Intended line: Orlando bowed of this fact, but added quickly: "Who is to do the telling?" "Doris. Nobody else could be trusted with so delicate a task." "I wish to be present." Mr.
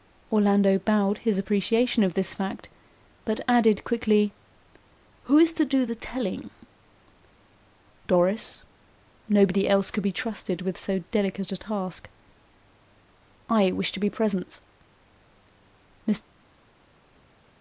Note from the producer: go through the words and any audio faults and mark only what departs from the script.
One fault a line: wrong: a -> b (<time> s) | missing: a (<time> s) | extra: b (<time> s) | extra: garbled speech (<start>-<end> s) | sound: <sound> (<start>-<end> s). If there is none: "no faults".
extra: his appreciation (1.2 s)